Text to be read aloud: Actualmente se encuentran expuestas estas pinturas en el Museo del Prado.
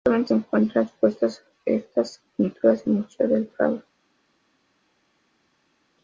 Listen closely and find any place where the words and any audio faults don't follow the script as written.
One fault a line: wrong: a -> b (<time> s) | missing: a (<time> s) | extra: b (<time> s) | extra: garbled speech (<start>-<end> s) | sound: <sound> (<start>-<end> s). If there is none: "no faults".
no faults